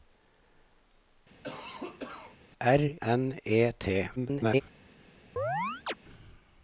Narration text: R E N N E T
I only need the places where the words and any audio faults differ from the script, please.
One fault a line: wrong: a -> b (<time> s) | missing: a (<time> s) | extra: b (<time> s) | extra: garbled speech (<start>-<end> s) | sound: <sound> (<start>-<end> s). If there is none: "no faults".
sound: cough (1.4-2.4 s)
missing: E N (2.8 s)
extra: garbled speech (4.2-4.6 s)
sound: chirp (5.4-5.9 s)